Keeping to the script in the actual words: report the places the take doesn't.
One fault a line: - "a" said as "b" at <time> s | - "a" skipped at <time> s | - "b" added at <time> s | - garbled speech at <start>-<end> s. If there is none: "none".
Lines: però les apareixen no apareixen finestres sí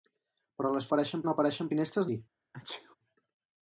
none